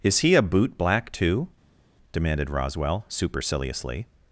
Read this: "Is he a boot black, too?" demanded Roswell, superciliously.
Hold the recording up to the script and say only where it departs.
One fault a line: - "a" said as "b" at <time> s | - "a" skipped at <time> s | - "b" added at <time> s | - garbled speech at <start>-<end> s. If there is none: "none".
none